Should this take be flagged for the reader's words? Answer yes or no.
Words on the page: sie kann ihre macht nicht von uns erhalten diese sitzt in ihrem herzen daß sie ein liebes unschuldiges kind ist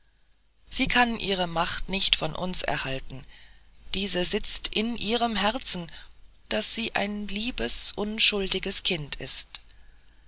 no